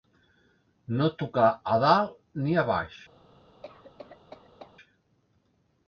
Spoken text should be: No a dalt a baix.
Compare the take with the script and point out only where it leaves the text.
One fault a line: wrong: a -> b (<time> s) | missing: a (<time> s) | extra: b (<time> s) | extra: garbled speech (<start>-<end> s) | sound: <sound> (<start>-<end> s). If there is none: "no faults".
extra: tocar (1.2 s)
extra: ni (2.5 s)
sound: cough (3.6-4.7 s)